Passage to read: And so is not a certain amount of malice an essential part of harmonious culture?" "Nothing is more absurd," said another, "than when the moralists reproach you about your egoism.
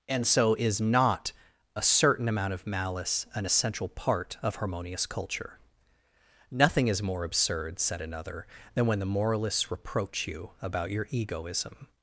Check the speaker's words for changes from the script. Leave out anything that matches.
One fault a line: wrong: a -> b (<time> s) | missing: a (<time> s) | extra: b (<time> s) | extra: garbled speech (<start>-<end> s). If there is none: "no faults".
no faults